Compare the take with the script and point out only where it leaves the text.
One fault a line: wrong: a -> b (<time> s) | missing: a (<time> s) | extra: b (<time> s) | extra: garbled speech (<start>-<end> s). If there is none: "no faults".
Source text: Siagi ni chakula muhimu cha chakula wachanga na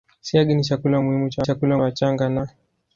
no faults